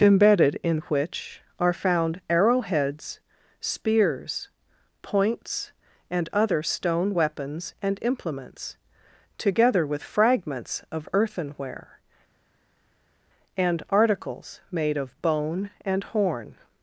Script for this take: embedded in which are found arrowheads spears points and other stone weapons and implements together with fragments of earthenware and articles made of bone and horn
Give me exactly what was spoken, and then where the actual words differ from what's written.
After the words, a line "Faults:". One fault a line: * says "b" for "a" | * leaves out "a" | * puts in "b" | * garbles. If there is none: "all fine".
embedded in which are found arrowheads spears points and other stone weapons and implements together with fragments of earthenware and articles made of bone and horn
Faults:
all fine